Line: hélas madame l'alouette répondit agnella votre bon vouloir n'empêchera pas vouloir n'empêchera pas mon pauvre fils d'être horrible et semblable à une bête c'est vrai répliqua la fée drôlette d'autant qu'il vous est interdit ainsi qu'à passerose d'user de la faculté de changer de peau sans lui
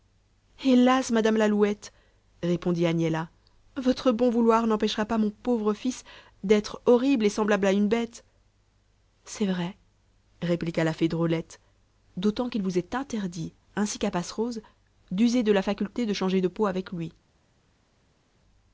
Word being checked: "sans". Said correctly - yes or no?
no